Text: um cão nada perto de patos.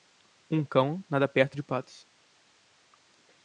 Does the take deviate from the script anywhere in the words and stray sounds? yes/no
no